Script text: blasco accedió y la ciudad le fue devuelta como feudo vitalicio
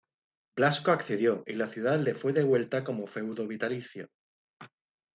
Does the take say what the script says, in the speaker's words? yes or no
yes